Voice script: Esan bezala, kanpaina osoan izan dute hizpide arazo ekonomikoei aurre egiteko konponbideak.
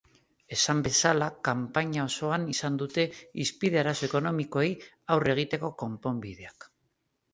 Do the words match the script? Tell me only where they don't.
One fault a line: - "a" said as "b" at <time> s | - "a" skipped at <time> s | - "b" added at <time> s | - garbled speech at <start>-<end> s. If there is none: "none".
none